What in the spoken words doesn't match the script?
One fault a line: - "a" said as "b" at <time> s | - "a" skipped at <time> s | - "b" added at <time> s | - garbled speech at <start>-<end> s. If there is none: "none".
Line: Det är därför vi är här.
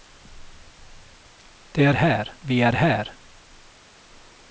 - "därför" said as "här" at 1.9 s